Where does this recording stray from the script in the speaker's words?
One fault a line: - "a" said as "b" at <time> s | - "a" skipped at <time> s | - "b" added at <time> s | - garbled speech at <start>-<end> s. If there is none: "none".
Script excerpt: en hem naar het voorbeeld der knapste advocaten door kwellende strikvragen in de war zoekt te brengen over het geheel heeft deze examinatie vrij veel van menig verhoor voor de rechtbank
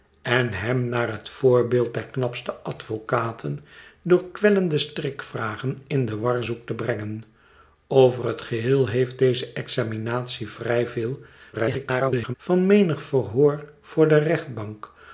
- garbled speech at 11.5-12.3 s